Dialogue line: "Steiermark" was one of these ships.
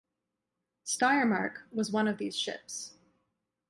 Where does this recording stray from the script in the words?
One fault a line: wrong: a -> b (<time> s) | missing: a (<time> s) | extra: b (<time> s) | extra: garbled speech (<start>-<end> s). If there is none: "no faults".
no faults